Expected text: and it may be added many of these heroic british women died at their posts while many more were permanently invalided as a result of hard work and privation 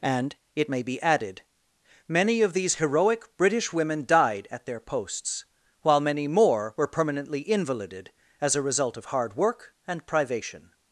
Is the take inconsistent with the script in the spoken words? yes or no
no